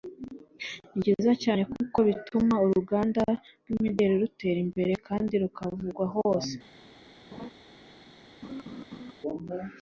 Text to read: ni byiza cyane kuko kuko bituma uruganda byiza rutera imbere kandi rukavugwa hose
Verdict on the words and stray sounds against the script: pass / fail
fail